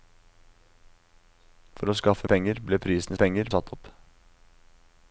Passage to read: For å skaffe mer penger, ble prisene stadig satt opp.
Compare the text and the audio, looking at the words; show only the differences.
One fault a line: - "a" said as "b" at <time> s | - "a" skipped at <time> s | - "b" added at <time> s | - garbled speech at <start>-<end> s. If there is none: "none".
- "mer" skipped at 2.3 s
- "stadig" said as "penger" at 3.1 s